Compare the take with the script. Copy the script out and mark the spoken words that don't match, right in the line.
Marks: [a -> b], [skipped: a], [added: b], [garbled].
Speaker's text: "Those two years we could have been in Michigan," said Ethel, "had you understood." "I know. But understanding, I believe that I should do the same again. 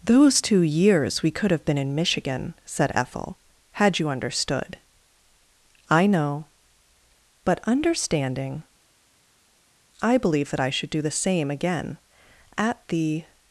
"Those two years we could have been in Michigan," said Ethel, "had you understood." "I know. But understanding, I believe that I should do the same again. [added: At the]